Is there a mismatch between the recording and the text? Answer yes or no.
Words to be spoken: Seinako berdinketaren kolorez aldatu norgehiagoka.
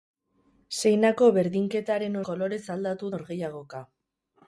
no